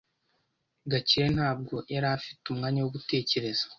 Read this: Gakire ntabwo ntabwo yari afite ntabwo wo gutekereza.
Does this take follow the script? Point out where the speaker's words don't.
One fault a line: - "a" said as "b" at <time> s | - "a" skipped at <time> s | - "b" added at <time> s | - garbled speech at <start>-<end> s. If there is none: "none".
- "ntabwo" skipped at 1.8 s
- "ntabwo" said as "umwanya" at 2.5 s